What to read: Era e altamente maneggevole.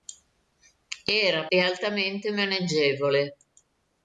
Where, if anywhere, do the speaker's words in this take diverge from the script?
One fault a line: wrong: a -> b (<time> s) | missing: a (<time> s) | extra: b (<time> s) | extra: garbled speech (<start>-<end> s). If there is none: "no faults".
no faults